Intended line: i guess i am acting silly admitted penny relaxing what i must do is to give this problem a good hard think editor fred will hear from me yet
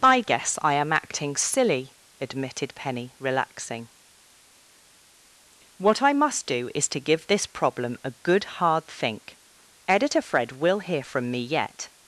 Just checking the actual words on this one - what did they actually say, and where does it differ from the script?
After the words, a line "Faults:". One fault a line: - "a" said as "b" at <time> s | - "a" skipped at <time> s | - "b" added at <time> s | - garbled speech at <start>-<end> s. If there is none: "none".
i guess i am acting silly admitted penny relaxing what i must do is to give this problem a good hard think editor fred will hear from me yet
Faults:
none